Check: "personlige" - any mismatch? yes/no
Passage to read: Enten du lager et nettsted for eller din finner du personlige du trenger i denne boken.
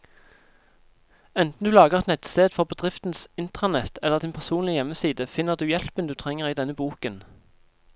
yes